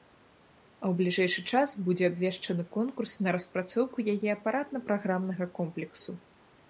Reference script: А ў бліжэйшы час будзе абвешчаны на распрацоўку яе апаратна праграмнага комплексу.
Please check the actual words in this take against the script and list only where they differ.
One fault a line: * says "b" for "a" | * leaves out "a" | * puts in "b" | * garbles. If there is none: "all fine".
* puts in "конкурс"